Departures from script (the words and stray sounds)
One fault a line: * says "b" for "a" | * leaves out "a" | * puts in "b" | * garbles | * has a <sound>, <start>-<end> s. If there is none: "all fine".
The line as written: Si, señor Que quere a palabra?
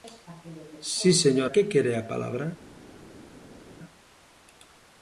all fine